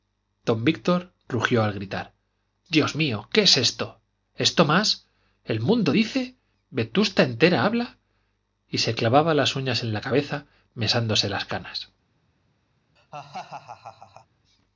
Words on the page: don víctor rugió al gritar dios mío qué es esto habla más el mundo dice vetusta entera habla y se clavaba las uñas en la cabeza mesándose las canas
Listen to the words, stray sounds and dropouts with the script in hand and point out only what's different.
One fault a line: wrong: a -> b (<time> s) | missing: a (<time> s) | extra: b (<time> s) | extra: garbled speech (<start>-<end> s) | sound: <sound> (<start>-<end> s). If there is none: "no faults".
wrong: habla -> esto (4.3 s)
sound: laugh (13.0-14.3 s)